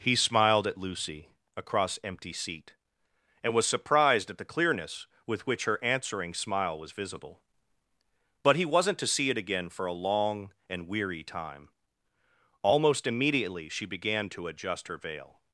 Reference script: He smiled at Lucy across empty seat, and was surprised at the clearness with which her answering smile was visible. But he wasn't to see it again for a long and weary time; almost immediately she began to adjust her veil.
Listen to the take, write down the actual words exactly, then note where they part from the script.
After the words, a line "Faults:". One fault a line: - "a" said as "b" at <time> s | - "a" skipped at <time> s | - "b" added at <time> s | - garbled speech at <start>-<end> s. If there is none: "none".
He smiled at Lucy across empty seat, and was surprised at the clearness with which her answering smile was visible. But he wasn't to see it again for a long and weary time; almost immediately she began to adjust her veil.
Faults:
none